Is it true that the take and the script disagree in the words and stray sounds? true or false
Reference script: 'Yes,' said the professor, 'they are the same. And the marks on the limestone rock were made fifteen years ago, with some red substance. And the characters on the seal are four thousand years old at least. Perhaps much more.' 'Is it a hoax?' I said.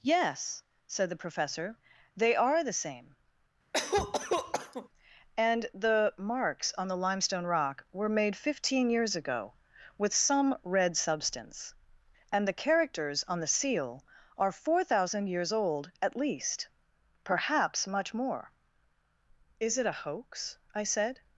true